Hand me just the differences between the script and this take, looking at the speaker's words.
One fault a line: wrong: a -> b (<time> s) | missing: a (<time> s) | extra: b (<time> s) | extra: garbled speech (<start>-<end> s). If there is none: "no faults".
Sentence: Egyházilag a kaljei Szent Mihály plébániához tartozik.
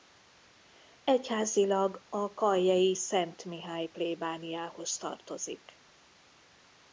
no faults